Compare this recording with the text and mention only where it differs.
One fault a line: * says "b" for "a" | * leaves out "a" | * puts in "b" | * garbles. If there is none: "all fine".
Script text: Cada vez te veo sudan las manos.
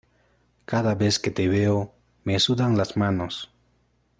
* puts in "que"
* puts in "me"